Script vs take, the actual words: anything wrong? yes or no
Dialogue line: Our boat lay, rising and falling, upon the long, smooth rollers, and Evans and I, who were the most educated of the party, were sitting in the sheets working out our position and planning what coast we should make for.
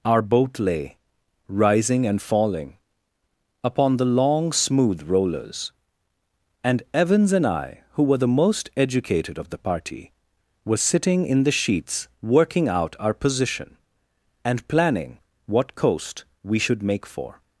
no